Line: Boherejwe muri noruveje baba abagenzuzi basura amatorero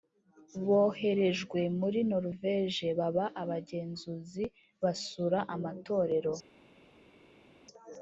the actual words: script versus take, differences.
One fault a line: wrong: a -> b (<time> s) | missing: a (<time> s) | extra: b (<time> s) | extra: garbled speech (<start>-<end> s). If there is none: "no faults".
no faults